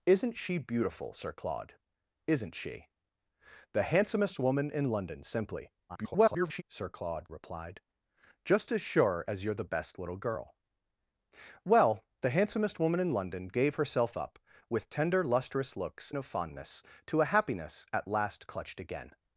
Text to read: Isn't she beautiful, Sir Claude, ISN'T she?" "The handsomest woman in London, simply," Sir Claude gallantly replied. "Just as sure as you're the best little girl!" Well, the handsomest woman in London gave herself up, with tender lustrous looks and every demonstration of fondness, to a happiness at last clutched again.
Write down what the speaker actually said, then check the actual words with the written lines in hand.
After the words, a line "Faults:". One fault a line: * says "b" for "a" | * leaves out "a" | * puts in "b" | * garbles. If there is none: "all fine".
Isn't she beautiful, Sir Claude, ISN'T she?" "The handsomest woman in London, simply," [garbled] Sir Claude replied. "Just as sure as you're the best little girl!" Well, the handsomest woman in London gave herself up, with tender lustrous looks of fondness, to a happiness at last clutched again.
Faults:
* garbles
* leaves out "gallantly"
* leaves out "and every demonstration"